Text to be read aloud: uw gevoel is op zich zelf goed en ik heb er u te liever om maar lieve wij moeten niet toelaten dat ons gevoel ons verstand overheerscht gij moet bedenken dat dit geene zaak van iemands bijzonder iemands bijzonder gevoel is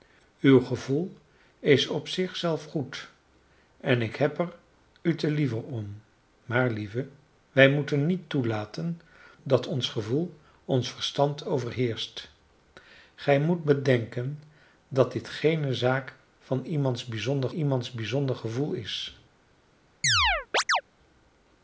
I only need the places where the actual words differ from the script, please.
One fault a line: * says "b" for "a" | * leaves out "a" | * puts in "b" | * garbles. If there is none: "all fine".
all fine